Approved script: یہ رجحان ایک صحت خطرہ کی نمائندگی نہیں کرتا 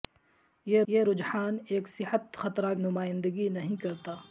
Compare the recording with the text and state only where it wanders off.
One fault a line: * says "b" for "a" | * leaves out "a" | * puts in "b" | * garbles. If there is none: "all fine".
* puts in "یہ"
* leaves out "کی"